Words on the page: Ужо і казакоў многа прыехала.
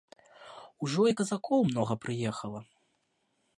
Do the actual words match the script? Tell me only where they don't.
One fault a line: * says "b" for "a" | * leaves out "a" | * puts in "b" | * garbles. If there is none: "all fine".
all fine